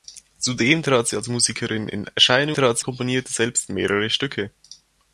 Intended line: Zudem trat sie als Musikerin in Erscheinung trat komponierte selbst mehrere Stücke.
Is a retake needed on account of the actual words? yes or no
no